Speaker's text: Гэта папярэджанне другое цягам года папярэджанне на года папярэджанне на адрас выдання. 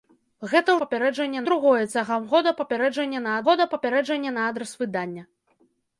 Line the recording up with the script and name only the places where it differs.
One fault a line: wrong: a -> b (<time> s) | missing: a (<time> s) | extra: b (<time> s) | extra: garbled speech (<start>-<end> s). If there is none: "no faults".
no faults